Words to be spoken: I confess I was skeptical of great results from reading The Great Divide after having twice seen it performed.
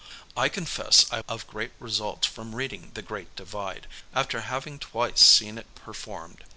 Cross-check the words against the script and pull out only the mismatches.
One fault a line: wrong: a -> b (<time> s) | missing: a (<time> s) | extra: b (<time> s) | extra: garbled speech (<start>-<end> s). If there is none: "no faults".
missing: was skeptical (1.2 s)